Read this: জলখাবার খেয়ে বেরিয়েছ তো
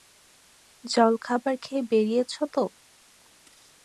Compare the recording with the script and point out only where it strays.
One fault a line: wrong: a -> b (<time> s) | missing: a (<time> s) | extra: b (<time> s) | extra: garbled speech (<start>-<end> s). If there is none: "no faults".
no faults